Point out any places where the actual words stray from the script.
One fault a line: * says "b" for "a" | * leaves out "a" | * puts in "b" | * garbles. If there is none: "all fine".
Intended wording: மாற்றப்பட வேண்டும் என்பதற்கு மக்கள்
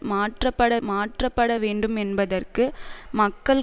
* puts in "மாற்றப்பட"